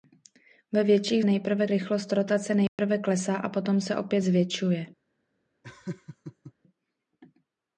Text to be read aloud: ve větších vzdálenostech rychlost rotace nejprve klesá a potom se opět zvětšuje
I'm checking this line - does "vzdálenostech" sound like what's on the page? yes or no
no